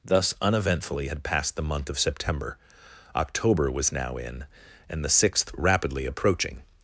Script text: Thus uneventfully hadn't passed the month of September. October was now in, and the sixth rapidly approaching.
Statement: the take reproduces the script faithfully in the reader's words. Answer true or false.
false